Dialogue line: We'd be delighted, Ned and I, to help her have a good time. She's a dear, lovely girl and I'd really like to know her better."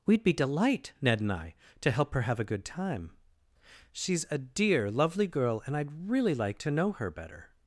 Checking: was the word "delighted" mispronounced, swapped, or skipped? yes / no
yes